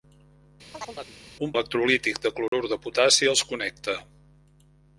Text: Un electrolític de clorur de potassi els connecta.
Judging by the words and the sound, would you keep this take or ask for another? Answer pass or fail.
fail